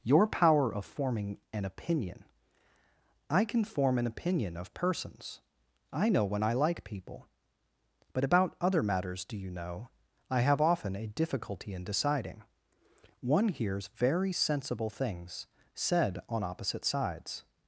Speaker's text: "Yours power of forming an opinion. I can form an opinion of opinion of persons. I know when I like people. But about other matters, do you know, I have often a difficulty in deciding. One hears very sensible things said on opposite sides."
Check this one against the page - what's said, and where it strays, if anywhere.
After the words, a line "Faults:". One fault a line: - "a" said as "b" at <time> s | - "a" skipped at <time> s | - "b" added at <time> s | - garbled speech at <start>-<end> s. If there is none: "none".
"Your power of forming an opinion. I can form an opinion of persons. I know when I like people. But about other matters, do you know, I have often a difficulty in deciding. One hears very sensible things said on opposite sides."
Faults:
- "Yours" said as "Your" at 0.0 s
- "opinion of" skipped at 4.7 s